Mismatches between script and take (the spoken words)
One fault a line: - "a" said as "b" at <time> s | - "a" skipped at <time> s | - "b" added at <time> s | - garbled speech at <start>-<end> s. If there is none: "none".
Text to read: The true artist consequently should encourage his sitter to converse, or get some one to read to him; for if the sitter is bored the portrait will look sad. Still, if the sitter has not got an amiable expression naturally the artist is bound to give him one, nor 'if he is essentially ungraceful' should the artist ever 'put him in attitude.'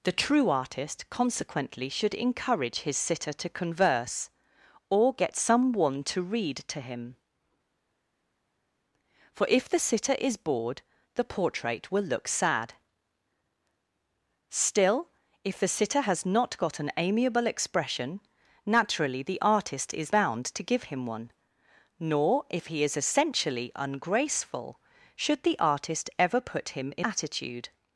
none